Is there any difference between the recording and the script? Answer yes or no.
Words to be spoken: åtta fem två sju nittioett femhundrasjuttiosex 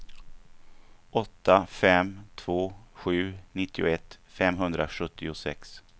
no